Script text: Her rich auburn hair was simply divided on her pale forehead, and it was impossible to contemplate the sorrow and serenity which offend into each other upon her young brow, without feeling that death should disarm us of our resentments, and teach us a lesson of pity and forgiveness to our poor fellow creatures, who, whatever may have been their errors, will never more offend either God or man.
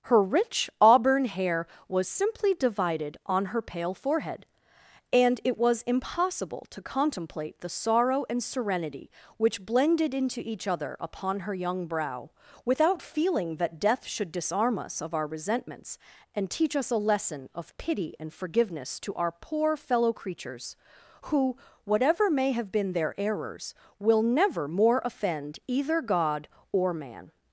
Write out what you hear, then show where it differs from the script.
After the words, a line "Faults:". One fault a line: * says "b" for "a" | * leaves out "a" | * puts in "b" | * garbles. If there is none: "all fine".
Her rich auburn hair was simply divided on her pale forehead, and it was impossible to contemplate the sorrow and serenity which blended into each other upon her young brow, without feeling that death should disarm us of our resentments, and teach us a lesson of pity and forgiveness to our poor fellow creatures, who, whatever may have been their errors, will never more offend either God or man.
Faults:
* says "blended" for "offend"